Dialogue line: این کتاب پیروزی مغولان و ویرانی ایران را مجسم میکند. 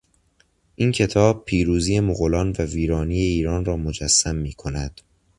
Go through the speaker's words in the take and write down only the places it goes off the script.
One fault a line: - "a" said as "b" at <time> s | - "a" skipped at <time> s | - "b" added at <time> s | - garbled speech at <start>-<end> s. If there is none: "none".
none